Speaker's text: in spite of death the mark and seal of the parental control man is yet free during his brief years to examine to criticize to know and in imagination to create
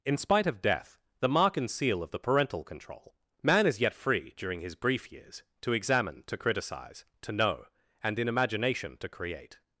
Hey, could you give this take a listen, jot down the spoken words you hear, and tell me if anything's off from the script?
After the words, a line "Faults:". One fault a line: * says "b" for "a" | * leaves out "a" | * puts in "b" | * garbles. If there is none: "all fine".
in spite of death the mark and seal of the parental control man is yet free during his brief years to examine to criticize to know and in imagination to create
Faults:
all fine